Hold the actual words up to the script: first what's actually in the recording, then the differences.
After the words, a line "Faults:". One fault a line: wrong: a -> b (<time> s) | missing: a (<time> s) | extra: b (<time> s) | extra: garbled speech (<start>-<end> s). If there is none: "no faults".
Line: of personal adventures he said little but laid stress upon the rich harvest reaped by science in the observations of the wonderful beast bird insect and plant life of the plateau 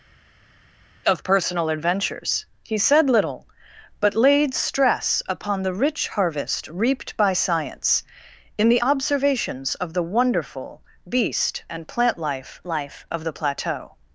of personal adventures he said little but laid stress upon the rich harvest reaped by science in the observations of the wonderful beast and plant life life of the plateau
Faults:
missing: bird insect (11.6 s)
extra: life (12.7 s)